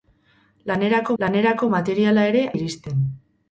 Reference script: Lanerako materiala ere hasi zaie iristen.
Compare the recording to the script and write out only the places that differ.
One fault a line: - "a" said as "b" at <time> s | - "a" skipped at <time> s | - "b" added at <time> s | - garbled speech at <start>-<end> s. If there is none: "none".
- "lanerako" added at 1.2 s
- "hasi zaie" skipped at 2.5 s